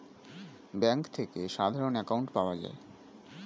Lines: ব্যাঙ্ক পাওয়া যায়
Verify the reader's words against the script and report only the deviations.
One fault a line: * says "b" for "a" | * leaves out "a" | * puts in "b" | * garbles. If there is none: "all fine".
* puts in "থেকে সাধারণ অ্যাকাউন্ট"